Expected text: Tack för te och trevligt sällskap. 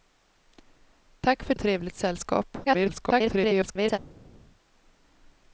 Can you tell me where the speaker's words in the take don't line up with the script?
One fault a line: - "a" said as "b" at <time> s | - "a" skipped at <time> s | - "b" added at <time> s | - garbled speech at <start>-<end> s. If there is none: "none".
- "te" skipped at 1.6 s
- garbled speech at 2.6-4.0 s